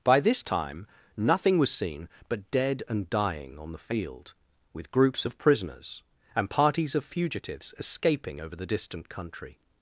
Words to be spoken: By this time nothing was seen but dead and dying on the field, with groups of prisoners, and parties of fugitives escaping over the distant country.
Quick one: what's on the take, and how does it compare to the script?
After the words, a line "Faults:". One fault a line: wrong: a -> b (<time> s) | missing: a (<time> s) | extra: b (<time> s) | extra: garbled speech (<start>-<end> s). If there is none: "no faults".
By this time nothing was seen but dead and dying on the field, with groups of prisoners, and parties of fugitives escaping over the distant country.
Faults:
no faults